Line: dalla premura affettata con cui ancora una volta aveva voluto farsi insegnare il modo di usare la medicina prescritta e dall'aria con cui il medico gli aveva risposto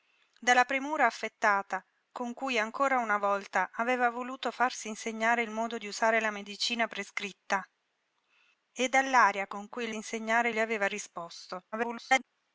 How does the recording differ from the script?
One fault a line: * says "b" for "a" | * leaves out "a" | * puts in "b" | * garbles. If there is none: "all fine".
* says "insegnare" for "medico"
* garbles